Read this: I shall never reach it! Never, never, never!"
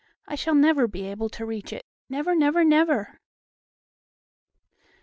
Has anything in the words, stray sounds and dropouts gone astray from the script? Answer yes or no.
yes